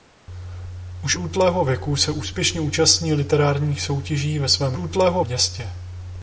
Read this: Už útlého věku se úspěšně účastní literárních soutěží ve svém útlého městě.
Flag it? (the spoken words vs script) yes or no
no